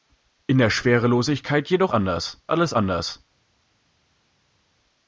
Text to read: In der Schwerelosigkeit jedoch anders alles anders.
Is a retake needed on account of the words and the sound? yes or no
no